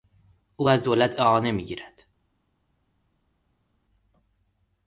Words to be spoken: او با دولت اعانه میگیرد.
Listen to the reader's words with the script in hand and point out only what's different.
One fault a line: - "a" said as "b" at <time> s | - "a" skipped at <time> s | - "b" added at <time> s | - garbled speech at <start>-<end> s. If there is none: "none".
- "با" said as "از" at 0.7 s